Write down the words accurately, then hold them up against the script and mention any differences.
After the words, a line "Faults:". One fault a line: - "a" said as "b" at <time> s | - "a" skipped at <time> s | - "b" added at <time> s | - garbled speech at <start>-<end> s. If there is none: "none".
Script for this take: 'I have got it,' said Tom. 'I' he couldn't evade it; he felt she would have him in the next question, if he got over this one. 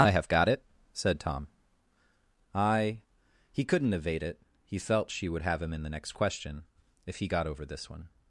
'I have got it,' said Tom. 'I' he couldn't evade it; he felt she would have him in the next question, if he got over this one.
Faults:
none